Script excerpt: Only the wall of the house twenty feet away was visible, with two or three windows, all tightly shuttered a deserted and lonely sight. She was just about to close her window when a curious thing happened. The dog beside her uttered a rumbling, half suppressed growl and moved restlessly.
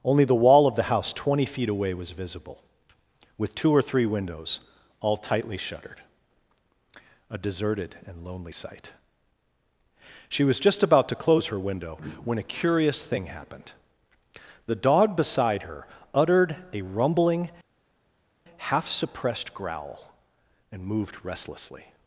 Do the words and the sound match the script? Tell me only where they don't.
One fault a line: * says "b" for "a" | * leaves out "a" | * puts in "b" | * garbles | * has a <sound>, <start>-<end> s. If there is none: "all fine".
all fine